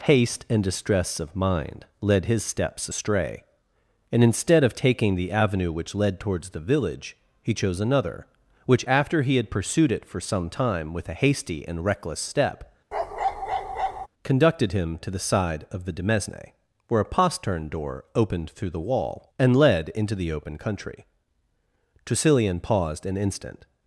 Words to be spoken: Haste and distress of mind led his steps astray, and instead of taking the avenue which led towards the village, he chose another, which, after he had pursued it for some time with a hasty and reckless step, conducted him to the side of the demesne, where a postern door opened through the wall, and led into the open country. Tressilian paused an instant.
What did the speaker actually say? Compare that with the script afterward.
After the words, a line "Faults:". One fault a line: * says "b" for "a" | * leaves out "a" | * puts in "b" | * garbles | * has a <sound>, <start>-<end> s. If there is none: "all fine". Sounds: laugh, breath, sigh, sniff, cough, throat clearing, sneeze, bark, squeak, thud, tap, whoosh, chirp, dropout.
Haste and distress of mind led his steps astray, and instead of taking the avenue which led towards the village, he chose another, which, after he had pursued it for some time with a hasty and reckless step, conducted him to the side of the demesne, where a postern door opened through the wall, and led into the open country. Tressilian paused an instant.
Faults:
* has a bark, 12.9-14.1 s